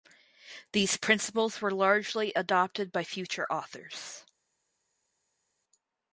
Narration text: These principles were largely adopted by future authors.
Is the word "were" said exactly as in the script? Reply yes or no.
yes